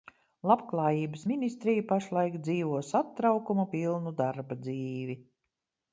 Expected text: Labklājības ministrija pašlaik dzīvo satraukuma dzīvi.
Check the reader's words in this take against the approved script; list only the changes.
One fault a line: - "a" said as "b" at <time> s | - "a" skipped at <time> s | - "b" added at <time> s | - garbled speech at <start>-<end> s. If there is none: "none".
- "pilnu darba" added at 3.8 s